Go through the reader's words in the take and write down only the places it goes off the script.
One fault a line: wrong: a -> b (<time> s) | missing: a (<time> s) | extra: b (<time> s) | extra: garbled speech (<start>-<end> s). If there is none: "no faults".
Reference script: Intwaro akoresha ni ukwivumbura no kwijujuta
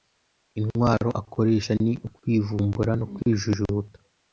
no faults